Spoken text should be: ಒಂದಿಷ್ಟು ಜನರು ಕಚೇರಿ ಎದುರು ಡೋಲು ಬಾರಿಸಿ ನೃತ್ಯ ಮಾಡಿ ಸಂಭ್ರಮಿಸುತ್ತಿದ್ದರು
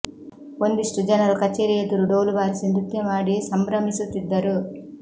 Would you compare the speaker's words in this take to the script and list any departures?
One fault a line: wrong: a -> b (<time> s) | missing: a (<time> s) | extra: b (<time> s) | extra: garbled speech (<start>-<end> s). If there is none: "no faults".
no faults